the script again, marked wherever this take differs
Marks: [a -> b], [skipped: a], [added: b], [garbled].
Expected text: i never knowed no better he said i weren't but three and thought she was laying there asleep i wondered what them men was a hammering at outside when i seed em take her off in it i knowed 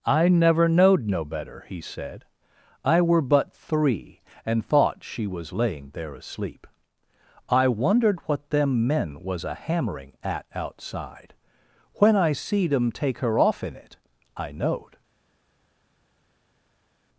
i never knowed no better he said i [weren't -> were] but three and thought she was laying there asleep i wondered what them men was a hammering at outside when i seed em take her off in it i knowed